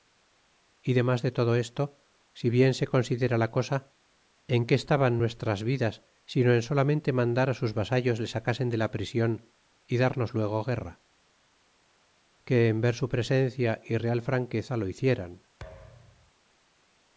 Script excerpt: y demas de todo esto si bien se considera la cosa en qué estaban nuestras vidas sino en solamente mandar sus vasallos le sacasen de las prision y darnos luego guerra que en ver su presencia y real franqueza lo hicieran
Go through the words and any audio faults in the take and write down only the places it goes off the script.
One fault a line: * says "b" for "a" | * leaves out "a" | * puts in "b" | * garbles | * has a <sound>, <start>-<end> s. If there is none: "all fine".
* says "la" for "las"
* has a thud, 15.6-16.3 s